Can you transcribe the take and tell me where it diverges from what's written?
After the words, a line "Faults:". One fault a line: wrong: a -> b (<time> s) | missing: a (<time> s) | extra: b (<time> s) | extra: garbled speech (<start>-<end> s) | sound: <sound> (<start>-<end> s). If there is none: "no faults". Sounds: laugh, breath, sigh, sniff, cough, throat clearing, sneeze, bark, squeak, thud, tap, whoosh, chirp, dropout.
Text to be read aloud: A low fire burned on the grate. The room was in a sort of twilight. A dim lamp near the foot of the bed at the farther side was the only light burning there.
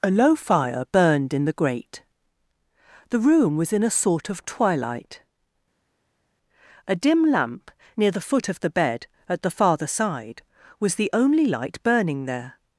A low fire burned in the grate. The room was in a sort of twilight. A dim lamp near the foot of the bed at the farther side was the only light burning there.
Faults:
wrong: on -> in (1.3 s)